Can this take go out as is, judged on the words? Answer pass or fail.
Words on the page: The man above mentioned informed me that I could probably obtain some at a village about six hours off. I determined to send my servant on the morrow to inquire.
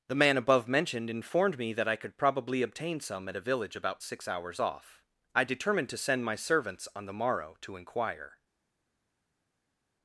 fail